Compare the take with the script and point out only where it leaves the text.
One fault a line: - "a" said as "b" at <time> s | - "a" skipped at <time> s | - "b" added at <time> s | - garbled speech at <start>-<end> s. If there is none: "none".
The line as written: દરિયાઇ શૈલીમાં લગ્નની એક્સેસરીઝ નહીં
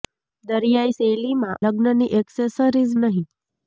none